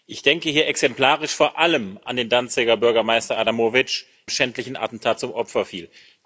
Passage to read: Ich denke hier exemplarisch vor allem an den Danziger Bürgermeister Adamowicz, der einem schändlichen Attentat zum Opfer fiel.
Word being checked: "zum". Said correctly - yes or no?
yes